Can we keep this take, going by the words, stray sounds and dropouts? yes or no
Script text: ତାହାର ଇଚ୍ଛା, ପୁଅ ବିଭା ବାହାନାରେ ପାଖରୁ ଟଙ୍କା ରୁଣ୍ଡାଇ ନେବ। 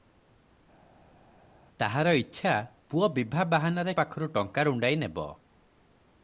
yes